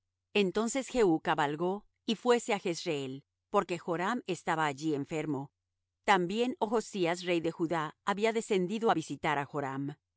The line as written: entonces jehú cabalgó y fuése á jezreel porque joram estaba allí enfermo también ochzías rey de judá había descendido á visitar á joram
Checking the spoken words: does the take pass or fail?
pass